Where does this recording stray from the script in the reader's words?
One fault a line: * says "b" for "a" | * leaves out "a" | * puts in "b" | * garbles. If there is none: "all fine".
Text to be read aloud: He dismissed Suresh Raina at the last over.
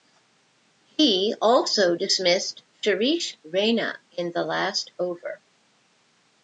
* puts in "also"
* says "in" for "at"